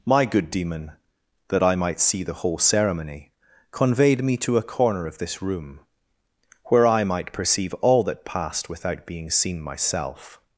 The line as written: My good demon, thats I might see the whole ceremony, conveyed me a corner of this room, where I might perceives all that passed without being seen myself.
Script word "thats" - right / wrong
wrong